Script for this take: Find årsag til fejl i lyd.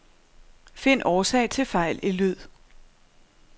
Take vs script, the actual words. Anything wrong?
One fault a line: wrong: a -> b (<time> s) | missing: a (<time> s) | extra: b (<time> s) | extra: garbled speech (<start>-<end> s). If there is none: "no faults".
no faults